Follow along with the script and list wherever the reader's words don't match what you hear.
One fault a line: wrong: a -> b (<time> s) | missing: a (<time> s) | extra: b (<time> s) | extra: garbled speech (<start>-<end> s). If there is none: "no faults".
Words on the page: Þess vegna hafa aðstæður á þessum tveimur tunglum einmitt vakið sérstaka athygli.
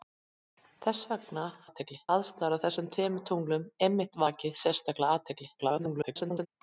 wrong: hafa -> athygli (1.7 s)
extra: garbled speech (5.6-6.5 s)